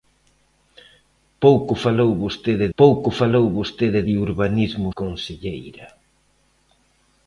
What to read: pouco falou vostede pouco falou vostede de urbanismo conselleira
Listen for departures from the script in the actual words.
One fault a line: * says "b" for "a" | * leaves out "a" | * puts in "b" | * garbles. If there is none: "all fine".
all fine